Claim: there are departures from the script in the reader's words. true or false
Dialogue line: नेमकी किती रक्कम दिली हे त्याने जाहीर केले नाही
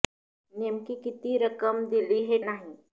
true